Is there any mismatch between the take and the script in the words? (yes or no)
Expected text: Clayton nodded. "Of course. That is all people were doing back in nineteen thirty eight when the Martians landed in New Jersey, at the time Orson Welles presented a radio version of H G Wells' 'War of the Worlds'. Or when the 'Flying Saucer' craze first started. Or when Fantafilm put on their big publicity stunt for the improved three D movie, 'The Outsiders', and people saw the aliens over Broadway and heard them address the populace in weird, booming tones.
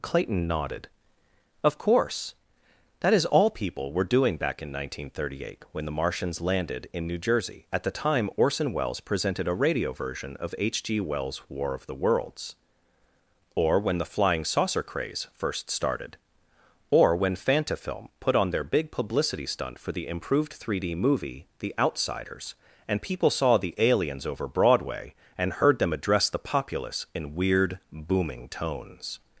no